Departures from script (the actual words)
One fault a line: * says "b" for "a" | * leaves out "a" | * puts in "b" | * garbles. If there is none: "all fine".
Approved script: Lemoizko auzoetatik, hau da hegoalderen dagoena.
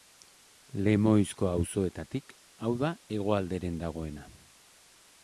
all fine